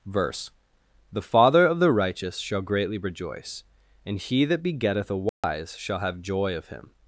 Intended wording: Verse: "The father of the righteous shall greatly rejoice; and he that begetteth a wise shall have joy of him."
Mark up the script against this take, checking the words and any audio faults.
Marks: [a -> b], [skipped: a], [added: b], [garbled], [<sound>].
Verse: "The father of the righteous shall greatly rejoice; and he that begetteth a wise [dropout] shall have joy of him."